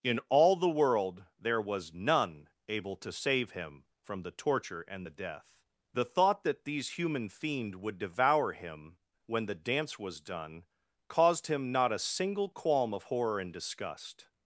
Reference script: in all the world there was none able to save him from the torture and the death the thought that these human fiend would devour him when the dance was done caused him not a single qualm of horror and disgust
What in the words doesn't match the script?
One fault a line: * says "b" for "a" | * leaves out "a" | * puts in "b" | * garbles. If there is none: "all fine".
all fine